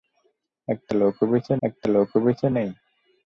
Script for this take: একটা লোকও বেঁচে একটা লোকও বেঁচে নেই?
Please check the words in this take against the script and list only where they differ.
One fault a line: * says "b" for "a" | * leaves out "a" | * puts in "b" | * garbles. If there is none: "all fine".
all fine